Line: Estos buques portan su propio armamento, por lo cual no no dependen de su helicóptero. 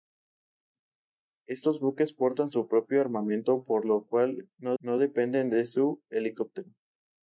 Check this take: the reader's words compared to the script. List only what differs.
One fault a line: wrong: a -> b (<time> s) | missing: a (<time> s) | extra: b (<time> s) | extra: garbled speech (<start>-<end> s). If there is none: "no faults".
no faults